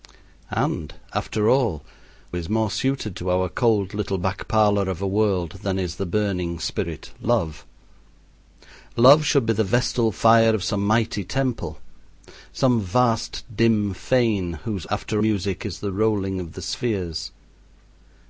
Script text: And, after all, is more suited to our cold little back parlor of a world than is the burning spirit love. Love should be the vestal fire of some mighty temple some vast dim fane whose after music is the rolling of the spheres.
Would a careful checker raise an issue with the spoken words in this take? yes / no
no